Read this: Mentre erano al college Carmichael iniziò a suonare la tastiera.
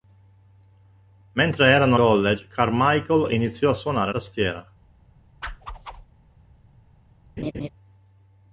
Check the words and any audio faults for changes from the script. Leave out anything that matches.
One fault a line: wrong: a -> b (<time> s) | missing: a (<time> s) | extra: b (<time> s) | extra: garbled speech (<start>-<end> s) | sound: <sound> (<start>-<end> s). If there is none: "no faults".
missing: al (1.9 s)
missing: la (4.1 s)
sound: whoosh (5.4-6.1 s)
sound: laugh (7.4-7.7 s)